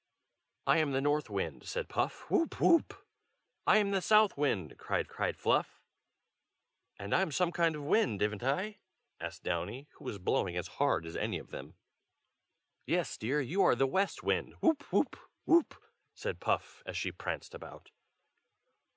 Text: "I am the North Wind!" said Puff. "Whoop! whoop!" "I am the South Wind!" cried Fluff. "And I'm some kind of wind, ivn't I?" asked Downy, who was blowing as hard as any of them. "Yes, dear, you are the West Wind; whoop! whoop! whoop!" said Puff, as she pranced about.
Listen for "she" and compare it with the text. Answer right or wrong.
right